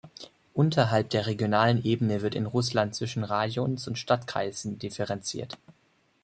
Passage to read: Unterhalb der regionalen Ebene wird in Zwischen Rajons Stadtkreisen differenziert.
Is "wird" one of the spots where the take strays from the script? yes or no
no